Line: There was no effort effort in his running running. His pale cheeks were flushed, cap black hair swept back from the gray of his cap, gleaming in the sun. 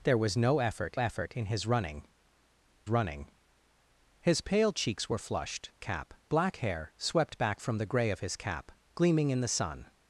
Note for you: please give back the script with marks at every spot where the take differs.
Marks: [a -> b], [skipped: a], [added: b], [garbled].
There was no effort effort in his running running. His pale cheeks were flushed, cap black hair swept back from the gray of his cap, gleaming in the sun.